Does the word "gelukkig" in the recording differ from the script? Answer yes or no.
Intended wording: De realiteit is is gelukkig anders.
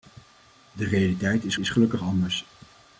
no